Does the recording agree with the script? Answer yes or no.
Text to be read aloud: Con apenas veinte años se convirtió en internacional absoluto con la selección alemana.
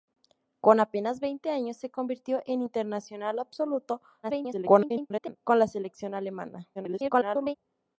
no